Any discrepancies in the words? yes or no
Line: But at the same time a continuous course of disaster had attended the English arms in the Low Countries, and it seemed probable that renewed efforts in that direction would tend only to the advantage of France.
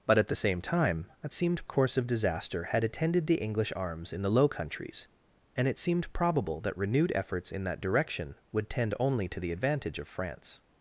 yes